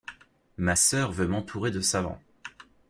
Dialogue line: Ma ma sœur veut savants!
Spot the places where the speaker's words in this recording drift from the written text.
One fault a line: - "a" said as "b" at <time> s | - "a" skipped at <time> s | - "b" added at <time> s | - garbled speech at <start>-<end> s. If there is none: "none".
- "ma" skipped at 0.8 s
- "m'entourer de" added at 1.3 s